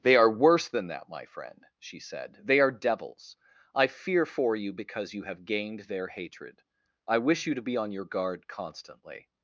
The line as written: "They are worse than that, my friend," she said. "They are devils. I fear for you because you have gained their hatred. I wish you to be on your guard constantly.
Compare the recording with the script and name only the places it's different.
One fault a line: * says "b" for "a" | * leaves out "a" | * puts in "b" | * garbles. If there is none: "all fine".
all fine